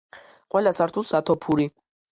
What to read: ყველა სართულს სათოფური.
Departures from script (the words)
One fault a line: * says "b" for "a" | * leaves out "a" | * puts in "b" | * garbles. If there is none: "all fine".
all fine